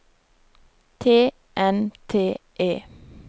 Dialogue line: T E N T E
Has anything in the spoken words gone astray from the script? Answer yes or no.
yes